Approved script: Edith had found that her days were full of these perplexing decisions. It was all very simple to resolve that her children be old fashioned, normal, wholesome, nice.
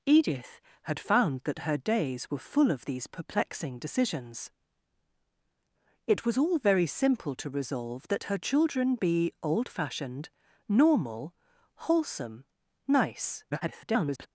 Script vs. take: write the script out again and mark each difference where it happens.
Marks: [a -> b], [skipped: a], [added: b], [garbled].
Edith had found that her days were full of these perplexing decisions. It was all very simple to resolve that her children be old fashioned, normal, wholesome, nice. [garbled]